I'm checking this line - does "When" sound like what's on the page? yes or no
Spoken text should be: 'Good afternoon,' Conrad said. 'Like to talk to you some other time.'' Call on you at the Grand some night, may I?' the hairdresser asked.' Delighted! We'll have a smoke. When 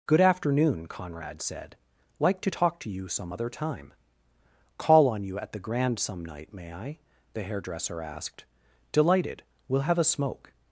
no